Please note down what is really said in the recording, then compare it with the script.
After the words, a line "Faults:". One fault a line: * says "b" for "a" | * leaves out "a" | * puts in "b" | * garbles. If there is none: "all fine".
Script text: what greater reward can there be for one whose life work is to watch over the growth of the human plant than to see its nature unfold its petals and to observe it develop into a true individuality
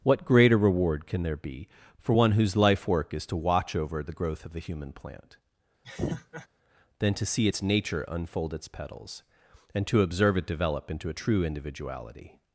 what greater reward can there be for one whose life work is to watch over the growth of the human plant than to see its nature unfold its petals and to observe it develop into a true individuality
Faults:
all fine